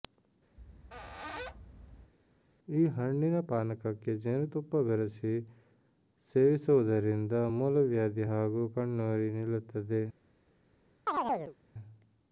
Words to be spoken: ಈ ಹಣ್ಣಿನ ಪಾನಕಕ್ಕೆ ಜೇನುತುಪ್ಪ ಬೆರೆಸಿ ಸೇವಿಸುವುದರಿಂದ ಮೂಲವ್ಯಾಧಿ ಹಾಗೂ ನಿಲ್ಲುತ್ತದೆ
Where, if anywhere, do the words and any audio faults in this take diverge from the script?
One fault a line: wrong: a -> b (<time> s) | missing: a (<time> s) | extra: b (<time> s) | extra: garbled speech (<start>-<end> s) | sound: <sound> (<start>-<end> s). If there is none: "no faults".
sound: squeak (0.6-2.1 s)
extra: ಕಣ್ಣುರಿ (8.8 s)
sound: chirp (11.1-11.6 s)